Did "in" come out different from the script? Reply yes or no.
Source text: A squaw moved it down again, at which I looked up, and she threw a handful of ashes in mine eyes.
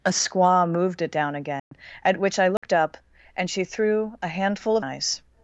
yes